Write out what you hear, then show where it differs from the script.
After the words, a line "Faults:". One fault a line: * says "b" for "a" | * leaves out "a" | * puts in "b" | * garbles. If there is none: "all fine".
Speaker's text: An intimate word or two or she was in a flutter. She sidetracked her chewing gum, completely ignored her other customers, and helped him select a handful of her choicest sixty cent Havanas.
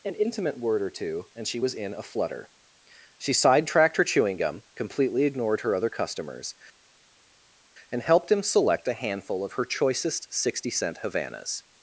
An intimate word or two and she was in a flutter. She sidetracked her chewing gum, completely ignored her other customers, and helped him select a handful of her choicest sixty cent Havanas.
Faults:
* says "and" for "or"